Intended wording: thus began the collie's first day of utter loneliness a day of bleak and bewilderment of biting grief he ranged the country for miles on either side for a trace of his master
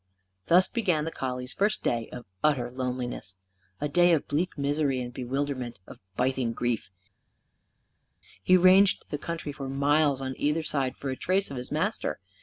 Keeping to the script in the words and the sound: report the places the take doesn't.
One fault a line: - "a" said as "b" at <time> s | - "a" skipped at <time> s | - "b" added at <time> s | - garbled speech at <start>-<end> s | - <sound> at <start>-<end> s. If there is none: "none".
- "misery" added at 4.6 s